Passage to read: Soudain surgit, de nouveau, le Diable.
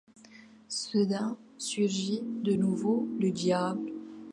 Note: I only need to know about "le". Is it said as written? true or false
true